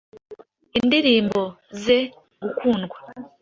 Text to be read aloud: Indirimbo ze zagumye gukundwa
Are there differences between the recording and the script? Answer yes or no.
yes